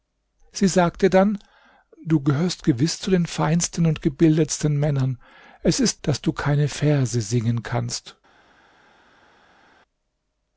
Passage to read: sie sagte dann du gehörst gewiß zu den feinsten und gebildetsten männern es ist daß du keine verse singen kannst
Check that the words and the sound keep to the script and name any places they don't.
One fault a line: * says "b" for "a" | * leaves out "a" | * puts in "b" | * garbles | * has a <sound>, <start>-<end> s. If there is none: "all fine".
all fine